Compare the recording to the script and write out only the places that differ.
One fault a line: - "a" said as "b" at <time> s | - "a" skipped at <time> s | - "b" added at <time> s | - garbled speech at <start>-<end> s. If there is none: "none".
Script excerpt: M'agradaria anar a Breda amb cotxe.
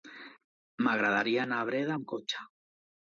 none